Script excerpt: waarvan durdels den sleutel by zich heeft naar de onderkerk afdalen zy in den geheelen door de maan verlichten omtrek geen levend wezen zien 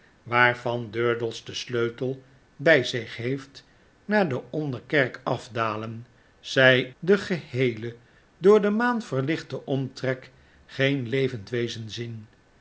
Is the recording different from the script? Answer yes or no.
yes